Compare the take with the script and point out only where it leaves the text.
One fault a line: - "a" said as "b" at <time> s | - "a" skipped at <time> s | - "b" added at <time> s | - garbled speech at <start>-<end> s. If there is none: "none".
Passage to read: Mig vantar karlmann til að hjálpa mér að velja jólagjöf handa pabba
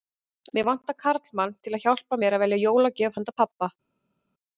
none